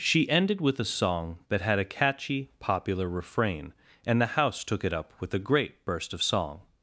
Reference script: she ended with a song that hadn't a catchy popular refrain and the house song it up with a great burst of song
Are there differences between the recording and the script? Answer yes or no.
yes